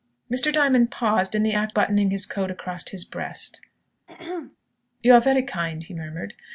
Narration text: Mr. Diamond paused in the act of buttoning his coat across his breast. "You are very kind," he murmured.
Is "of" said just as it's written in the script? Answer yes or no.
no